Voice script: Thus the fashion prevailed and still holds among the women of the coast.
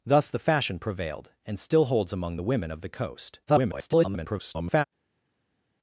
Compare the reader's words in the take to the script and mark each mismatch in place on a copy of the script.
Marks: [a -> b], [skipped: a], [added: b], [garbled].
Thus the fashion prevailed and still holds among the women of the coast. [garbled]